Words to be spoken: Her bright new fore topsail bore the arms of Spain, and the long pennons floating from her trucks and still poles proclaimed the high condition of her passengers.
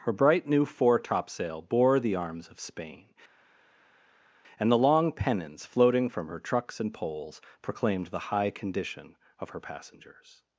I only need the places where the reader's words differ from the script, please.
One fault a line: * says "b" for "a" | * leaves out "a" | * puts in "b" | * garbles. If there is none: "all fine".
* leaves out "still"